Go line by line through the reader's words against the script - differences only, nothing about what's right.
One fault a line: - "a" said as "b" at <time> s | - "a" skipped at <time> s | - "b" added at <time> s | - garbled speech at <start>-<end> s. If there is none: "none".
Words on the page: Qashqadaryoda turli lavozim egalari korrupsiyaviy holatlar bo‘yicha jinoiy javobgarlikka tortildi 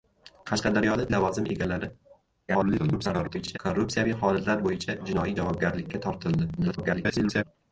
- "turli" skipped at 1.0 s
- garbled speech at 2.5-3.6 s
- garbled speech at 6.6-7.4 s